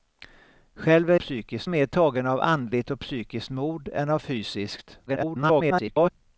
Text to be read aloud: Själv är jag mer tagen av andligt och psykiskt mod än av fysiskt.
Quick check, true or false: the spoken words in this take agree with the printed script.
false